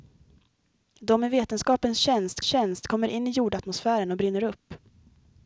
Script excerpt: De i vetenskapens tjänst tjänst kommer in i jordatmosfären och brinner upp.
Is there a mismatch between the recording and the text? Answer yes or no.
no